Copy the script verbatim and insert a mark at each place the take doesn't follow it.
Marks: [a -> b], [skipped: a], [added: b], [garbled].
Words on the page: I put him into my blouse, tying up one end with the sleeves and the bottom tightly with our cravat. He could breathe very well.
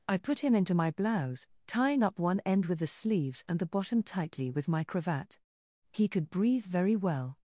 I put him into my blouse, tying up one end with the sleeves and the bottom tightly with [our -> my] cravat. He could breathe very well.